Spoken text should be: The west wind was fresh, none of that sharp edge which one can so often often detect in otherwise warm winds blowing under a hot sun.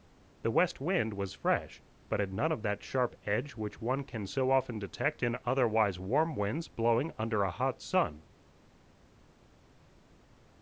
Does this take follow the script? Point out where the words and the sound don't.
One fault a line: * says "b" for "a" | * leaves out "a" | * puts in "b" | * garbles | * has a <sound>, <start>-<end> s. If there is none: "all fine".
* puts in "but had"
* leaves out "often"